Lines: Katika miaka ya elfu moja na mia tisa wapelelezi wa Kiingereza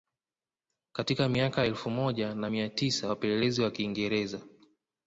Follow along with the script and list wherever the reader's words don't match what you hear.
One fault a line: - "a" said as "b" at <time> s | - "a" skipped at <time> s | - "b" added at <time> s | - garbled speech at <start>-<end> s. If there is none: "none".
none